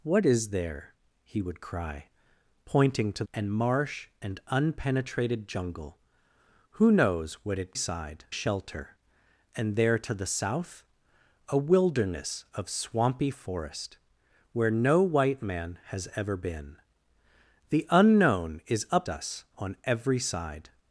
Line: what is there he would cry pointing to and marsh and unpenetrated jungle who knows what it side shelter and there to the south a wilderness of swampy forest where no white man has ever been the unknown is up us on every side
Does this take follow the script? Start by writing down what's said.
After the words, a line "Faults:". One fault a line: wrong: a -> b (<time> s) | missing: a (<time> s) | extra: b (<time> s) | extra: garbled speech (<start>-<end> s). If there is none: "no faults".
what is there he would cry pointing to and marsh and unpenetrated jungle who knows what it side shelter and there to the south a wilderness of swampy forest where no white man has ever been the unknown is up us on every side
Faults:
no faults